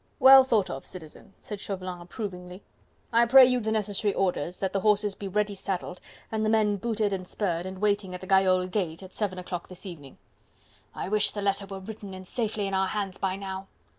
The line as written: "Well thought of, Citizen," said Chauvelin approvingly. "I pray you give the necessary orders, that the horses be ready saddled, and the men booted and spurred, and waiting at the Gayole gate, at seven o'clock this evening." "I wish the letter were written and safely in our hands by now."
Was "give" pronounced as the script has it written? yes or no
no